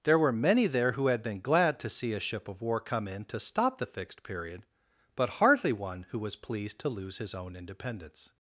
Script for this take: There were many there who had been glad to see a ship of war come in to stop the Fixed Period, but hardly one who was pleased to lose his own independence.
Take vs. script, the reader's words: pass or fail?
pass